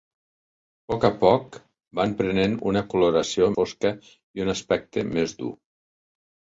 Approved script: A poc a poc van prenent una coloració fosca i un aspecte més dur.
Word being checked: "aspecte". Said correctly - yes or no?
yes